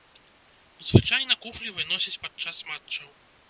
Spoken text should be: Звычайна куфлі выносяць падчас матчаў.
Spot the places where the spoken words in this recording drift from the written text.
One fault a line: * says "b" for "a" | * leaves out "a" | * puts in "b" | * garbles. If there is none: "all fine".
all fine